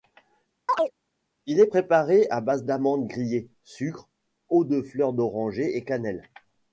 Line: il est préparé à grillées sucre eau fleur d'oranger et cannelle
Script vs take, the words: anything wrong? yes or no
yes